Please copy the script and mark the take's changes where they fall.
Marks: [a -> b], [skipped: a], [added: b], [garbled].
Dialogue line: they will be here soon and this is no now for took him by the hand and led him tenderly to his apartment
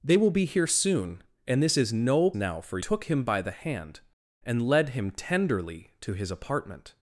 they will be here soon and this is no now for took him by the hand and led him tenderly to his apartment